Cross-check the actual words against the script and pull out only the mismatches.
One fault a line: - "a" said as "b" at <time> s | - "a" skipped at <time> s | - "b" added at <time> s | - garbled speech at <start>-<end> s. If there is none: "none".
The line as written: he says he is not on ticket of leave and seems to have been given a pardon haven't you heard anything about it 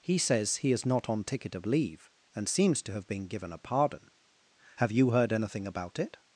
- "haven't" said as "have" at 4.8 s